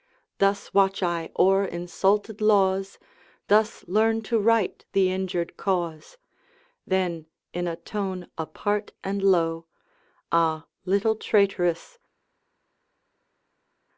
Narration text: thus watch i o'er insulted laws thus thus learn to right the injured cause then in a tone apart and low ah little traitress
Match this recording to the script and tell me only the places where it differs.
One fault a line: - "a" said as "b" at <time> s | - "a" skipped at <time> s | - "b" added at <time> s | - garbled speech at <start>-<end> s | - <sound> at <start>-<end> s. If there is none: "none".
- "thus" skipped at 3.9 s